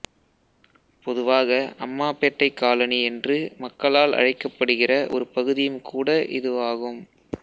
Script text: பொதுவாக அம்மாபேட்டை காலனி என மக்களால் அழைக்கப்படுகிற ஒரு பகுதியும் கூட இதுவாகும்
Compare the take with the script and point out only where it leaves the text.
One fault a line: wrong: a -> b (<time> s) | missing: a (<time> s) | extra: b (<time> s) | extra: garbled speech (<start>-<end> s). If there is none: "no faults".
wrong: என -> என்று (3.0 s)